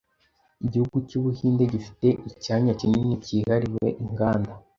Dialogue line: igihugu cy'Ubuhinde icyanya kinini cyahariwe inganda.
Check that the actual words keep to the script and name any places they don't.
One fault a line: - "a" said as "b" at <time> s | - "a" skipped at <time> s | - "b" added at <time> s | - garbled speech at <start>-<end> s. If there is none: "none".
- "gifite" added at 1.7 s